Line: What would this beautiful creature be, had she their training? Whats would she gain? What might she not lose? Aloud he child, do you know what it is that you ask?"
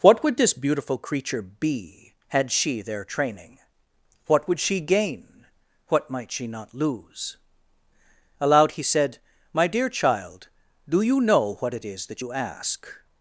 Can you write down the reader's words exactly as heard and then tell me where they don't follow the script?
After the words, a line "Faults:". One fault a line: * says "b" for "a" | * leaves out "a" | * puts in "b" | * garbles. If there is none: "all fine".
What would this beautiful creature be, had she their training? What would she gain? What might she not lose? Aloud he said, "My dear child, do you know what it is that you ask?"
Faults:
* says "What" for "Whats"
* puts in "said My dear"